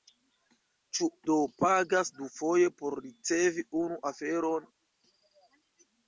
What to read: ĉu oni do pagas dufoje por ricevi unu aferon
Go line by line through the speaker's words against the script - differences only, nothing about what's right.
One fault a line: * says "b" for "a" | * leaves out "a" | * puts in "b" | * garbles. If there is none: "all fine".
* leaves out "oni"